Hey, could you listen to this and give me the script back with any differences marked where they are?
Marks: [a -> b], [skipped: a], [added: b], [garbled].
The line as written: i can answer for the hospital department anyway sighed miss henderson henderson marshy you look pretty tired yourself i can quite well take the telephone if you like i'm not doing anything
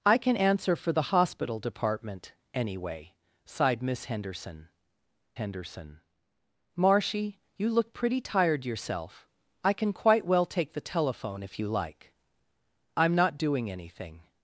i can answer for the hospital department anyway sighed miss henderson henderson marshy you look pretty tired yourself i can quite well take the telephone if you like i'm not doing anything